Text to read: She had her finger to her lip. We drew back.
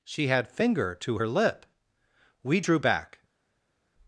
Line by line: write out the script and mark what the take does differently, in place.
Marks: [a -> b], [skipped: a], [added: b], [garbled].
She had [skipped: her] finger to her lip. We drew back.